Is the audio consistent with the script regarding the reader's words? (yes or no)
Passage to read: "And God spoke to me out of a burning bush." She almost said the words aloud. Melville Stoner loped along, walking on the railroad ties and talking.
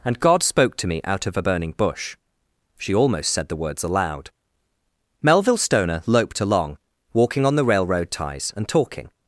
yes